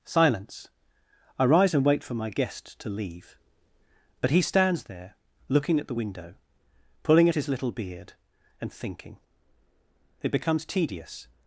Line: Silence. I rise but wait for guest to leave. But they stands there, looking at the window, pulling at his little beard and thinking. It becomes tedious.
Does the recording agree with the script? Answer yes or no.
no